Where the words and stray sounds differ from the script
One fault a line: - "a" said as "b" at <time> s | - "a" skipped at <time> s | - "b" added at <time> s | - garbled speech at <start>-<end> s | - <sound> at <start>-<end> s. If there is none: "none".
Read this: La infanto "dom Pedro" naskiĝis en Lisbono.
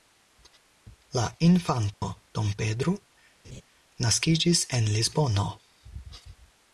- dropout at 1.9-2.0 s
- laugh at 3.4-3.6 s